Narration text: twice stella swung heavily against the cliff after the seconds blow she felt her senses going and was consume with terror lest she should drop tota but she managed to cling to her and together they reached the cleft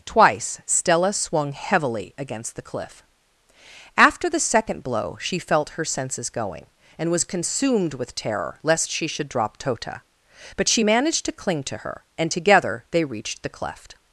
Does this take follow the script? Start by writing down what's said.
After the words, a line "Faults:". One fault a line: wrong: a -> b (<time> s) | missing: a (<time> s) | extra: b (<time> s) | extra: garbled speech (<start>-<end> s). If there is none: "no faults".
twice stella swung heavily against the cliff after the second blow she felt her senses going and was consumed with terror lest she should drop tota but she managed to cling to her and together they reached the cleft
Faults:
wrong: seconds -> second (4.4 s)
wrong: consume -> consumed (7.2 s)